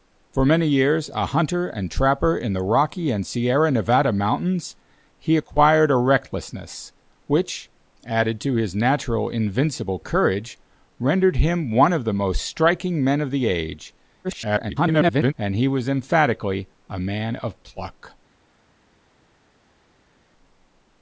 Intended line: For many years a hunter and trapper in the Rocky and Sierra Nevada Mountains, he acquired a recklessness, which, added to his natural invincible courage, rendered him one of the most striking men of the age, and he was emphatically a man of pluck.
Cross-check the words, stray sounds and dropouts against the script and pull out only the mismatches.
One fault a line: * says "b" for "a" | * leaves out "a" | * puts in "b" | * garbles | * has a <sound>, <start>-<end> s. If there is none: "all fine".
* garbles